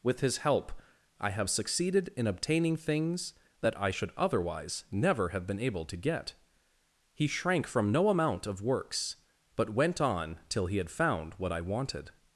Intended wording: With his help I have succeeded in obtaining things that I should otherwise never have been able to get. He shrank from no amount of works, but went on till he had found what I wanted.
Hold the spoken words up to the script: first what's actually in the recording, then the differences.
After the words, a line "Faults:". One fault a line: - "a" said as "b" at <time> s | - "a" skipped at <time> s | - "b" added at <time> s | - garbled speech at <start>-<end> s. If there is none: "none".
With his help I have succeeded in obtaining things that I should otherwise never have been able to get. He shrank from no amount of works, but went on till he had found what I wanted.
Faults:
none